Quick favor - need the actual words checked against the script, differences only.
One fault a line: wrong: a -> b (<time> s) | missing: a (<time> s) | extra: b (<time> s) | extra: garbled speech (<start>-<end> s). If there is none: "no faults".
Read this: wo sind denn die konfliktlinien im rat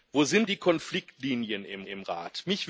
missing: denn (0.5 s)
extra: im (1.8 s)